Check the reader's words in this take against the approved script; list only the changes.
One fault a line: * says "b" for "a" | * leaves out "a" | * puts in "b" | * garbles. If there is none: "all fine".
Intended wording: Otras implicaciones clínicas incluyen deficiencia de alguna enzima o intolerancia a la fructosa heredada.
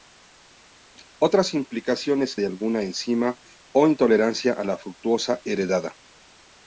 * leaves out "clínicas incluyen deficiencia"